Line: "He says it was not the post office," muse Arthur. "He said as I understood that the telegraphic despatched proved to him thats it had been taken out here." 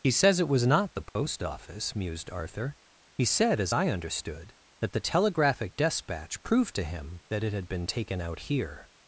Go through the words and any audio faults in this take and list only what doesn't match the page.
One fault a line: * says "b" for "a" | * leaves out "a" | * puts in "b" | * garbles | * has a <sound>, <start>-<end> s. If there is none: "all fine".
* has a dropout, 1.1-1.2 s
* says "mused" for "muse"
* says "despatch" for "despatched"
* says "that" for "thats"